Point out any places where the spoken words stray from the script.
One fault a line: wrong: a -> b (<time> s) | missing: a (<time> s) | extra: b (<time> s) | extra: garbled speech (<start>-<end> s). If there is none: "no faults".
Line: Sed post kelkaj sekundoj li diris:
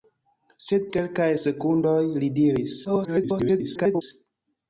missing: post (0.8 s)
extra: garbled speech (2.8-4.0 s)